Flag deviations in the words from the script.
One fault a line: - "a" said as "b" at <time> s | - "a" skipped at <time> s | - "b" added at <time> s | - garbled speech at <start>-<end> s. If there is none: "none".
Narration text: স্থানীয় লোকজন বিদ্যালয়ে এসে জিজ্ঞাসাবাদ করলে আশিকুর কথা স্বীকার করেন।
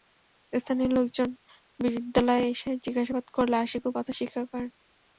none